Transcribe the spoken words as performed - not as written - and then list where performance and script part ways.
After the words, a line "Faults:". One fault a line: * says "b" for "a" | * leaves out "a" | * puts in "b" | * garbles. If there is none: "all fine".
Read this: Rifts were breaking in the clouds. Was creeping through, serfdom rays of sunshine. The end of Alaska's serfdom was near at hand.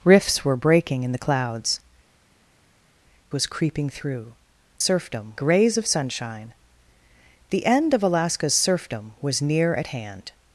Rifts were breaking in the clouds. Was creeping through, serfdom rays of sunshine. The end of Alaska's serfdom was near at hand.
Faults:
all fine